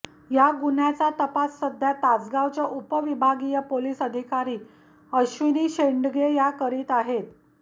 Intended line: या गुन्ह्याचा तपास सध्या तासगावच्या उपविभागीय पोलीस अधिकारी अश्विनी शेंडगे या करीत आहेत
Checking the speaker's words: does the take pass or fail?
pass